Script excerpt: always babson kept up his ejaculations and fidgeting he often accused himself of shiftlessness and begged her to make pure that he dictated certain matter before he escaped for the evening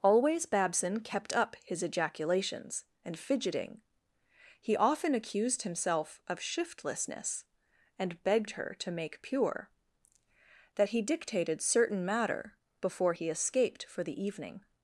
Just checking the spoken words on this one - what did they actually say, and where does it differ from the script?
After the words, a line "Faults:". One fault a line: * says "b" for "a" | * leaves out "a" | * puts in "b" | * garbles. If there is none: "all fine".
always babson kept up his ejaculations and fidgeting he often accused himself of shiftlessness and begged her to make pure that he dictated certain matter before he escaped for the evening
Faults:
all fine